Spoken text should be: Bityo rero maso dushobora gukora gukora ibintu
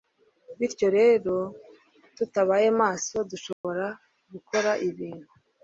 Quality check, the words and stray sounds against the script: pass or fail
fail